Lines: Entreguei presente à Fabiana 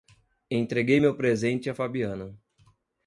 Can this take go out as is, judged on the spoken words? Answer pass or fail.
fail